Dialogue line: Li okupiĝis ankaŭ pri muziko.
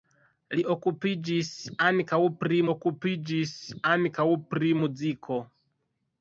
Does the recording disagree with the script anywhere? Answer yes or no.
yes